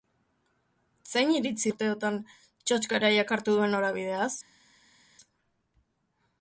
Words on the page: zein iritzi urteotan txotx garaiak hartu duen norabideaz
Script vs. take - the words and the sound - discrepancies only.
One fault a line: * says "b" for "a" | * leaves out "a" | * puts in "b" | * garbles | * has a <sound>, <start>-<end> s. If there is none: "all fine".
all fine